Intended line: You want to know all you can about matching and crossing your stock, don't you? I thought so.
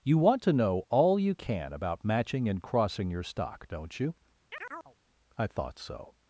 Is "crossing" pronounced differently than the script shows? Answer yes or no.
no